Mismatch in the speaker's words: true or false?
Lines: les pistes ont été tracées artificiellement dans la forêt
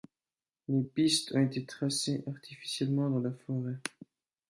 false